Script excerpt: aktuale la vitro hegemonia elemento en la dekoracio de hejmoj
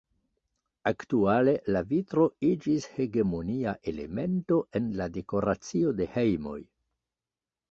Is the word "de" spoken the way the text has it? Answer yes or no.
yes